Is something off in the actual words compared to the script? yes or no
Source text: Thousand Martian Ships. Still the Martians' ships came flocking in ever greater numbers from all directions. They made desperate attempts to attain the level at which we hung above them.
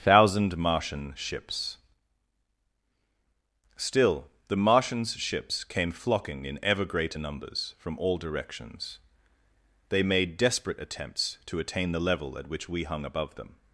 no